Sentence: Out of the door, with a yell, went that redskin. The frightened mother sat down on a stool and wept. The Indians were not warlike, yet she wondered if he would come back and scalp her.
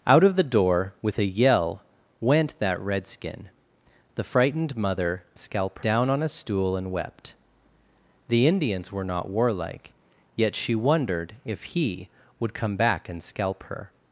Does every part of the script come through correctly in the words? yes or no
no